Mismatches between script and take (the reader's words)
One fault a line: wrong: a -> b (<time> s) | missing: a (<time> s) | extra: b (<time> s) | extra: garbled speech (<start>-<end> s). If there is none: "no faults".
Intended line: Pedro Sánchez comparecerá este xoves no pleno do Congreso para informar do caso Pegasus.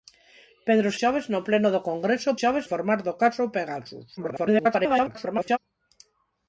missing: Sánchez comparecerá este (0.9 s)
wrong: para -> xoves (2.4 s)
extra: garbled speech (4.2-5.6 s)